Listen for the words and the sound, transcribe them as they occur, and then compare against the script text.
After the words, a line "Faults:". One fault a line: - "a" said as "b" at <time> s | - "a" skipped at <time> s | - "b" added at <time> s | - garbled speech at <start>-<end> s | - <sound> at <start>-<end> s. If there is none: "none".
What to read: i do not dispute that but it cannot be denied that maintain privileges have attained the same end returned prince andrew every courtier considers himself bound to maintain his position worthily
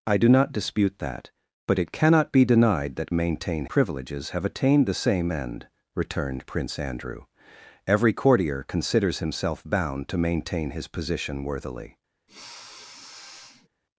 i do not dispute that but it cannot be denied that maintain privileges have attained the same end returned prince andrew every courtier considers himself bound to maintain his position worthily
Faults:
- sniff at 12.3-13.7 s